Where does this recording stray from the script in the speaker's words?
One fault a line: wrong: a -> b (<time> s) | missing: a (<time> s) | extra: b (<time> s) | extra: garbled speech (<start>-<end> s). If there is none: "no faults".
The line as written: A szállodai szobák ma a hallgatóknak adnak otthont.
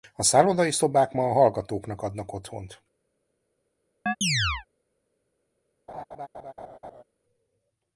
no faults